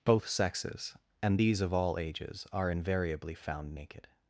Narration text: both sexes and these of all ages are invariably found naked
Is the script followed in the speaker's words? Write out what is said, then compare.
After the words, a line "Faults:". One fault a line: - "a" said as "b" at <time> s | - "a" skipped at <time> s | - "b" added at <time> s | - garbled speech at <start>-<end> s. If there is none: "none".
both sexes and these of all ages are invariably found naked
Faults:
none